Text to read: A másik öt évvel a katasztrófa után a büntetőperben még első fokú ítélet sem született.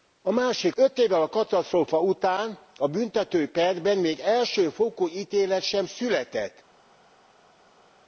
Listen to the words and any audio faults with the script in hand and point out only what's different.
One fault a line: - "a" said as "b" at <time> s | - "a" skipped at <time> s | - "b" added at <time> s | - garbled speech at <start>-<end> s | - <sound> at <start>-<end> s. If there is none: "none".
none